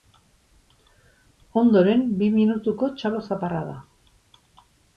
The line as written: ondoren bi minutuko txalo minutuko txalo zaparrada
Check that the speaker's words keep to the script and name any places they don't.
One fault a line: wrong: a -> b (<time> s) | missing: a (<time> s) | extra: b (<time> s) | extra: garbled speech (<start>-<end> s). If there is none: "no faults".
missing: minutuko txalo (3.2 s)